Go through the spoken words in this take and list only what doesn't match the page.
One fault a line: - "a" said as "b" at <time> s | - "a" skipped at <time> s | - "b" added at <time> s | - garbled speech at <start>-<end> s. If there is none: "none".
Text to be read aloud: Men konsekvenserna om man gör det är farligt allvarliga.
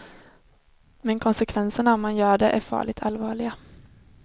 none